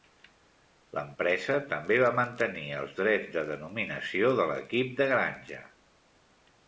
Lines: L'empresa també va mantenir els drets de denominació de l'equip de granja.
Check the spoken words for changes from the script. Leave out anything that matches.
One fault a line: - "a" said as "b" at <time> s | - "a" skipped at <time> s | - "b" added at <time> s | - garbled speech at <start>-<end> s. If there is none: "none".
none